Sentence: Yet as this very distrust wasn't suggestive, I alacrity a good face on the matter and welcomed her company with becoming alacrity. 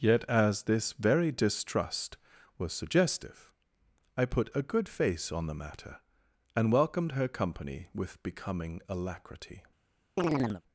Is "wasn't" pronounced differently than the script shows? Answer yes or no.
yes